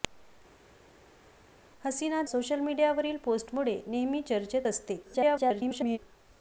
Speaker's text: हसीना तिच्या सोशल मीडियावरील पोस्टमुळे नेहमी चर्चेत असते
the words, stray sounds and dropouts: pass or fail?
fail